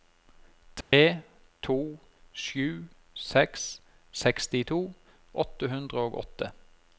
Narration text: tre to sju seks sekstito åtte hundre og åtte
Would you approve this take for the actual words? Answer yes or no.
yes